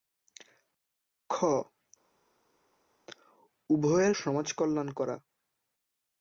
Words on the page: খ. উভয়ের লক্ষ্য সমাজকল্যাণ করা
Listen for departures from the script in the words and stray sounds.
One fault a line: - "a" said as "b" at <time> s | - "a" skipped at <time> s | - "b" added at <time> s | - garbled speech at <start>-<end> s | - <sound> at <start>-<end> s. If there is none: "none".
- "লক্ষ্য" skipped at 4.1 s